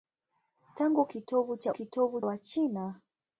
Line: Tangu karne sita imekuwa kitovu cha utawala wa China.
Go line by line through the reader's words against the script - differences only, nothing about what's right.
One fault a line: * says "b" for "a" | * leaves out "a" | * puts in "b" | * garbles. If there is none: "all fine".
* leaves out "karne sita imekuwa"
* says "kitovu" for "utawala"